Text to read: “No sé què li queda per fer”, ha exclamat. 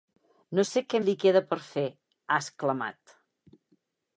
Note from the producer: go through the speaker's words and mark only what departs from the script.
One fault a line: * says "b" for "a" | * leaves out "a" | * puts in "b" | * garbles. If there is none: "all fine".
all fine